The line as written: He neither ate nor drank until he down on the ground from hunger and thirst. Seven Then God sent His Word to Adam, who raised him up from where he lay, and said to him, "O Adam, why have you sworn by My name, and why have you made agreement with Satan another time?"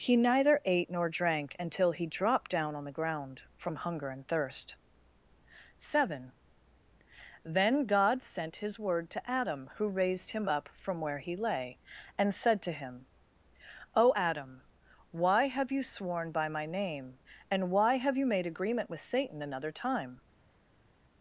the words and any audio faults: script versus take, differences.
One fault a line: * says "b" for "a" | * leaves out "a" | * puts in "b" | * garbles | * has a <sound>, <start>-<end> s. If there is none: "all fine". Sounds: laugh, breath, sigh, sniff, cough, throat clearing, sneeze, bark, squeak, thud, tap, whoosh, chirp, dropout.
* puts in "dropped"